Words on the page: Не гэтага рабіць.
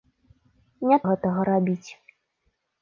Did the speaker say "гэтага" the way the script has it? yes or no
yes